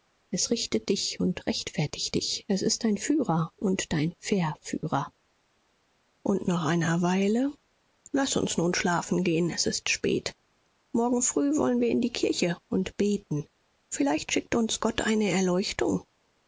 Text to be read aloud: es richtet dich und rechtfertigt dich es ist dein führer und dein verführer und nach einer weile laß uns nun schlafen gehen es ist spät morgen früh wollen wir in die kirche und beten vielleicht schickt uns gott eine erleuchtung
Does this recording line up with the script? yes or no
yes